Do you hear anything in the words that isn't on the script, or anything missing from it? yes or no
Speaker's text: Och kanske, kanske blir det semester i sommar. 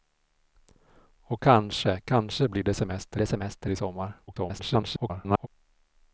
yes